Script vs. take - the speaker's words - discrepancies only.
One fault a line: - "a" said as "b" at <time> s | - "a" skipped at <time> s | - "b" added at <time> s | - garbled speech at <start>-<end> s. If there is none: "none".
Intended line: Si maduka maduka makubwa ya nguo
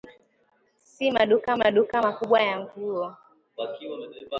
none